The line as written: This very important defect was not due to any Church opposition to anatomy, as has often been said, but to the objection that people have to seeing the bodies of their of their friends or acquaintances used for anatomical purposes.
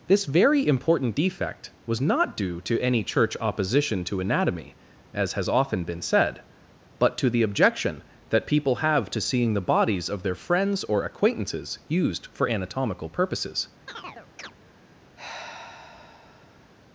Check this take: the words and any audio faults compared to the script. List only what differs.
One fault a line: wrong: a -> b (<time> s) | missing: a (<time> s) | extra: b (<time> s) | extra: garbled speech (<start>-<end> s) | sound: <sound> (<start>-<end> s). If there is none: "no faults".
missing: of their (10.3 s)
sound: chirp (13.9-14.5 s)
sound: sigh (15.2-16.7 s)